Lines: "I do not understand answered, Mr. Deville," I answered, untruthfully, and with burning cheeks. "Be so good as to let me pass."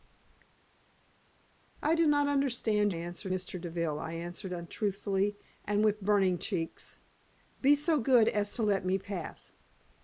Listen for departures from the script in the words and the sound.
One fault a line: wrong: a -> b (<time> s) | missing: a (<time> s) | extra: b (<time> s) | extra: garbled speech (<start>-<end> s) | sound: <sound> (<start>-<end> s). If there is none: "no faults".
no faults